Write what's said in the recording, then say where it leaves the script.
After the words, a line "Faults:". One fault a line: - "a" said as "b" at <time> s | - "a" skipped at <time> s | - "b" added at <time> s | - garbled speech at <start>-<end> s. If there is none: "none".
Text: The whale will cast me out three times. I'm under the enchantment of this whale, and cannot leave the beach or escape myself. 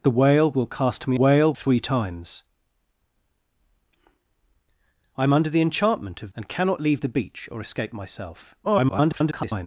The whale will cast me whale three times. I'm under the enchantment of and cannot leave the beach or escape myself. [garbled]
Faults:
- "out" said as "whale" at 1.1 s
- "this whale" skipped at 6.3 s
- garbled speech at 8.6-9.7 s